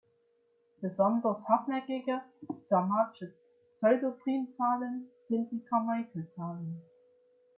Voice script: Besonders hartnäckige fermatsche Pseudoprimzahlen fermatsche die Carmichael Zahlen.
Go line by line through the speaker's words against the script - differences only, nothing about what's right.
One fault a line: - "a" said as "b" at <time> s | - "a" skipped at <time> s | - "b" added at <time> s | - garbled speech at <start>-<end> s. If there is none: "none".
- "fermatsche" said as "sind" at 5.3 s